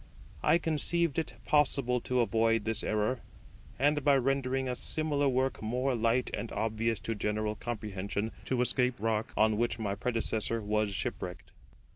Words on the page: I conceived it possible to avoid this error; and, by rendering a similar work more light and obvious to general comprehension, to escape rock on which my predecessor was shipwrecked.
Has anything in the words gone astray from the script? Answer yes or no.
no